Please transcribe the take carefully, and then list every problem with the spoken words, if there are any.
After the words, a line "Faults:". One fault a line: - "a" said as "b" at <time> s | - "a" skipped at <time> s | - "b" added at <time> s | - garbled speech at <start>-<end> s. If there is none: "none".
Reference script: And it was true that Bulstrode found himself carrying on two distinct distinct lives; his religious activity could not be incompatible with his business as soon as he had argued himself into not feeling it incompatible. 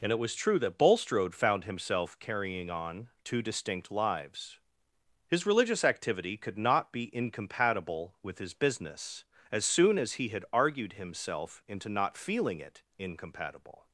And it was true that Bulstrode found himself carrying on two distinct lives; his religious activity could not be incompatible with his business as soon as he had argued himself into not feeling it incompatible.
Faults:
- "distinct" skipped at 3.9 s